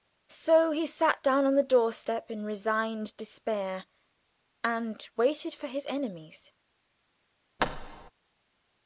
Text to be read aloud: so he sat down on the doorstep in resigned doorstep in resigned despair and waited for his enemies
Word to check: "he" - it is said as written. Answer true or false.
true